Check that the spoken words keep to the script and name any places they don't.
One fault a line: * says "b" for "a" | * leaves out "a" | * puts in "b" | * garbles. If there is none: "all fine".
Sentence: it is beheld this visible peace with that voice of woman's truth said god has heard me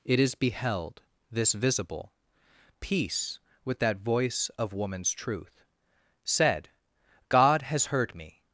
all fine